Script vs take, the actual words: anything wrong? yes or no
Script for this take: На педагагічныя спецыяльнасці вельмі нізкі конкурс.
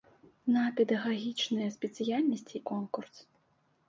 yes